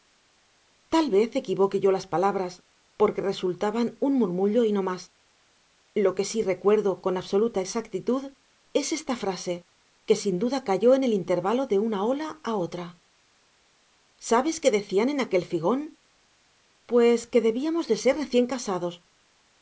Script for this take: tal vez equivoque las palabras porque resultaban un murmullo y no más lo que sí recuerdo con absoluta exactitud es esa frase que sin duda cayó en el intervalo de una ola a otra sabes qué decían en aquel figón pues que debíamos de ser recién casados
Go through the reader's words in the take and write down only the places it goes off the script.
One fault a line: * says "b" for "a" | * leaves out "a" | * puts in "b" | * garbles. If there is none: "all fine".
* puts in "yo"
* says "esta" for "esa"